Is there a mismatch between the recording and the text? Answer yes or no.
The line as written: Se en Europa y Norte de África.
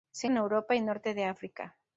no